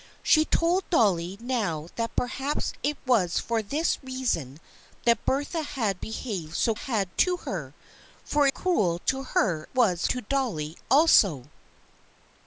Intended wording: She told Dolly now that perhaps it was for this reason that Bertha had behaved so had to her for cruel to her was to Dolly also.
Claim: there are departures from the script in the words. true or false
false